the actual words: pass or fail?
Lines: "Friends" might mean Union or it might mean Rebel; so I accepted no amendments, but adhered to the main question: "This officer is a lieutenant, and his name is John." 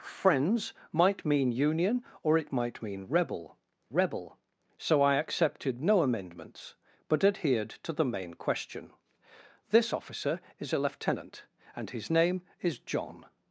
fail